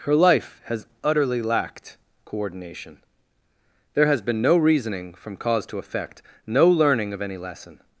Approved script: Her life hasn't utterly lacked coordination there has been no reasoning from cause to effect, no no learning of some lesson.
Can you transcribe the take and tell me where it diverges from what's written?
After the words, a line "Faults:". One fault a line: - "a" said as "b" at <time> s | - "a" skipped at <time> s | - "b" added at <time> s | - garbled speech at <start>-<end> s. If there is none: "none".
Her life has utterly lacked coordination there has been no reasoning from cause to effect, no learning of any lesson.
Faults:
- "hasn't" said as "has" at 0.7 s
- "no" skipped at 6.7 s
- "some" said as "any" at 7.2 s